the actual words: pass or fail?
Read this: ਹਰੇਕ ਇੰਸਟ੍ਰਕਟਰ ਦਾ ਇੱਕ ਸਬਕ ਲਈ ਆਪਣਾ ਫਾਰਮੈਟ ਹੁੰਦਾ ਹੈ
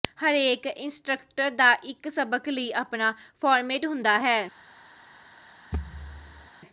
pass